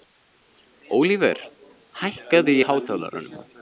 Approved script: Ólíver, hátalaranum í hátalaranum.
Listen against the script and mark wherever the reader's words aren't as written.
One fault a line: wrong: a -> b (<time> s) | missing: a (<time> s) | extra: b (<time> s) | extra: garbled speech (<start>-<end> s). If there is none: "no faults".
wrong: hátalaranum -> hækkaðu (2.0 s)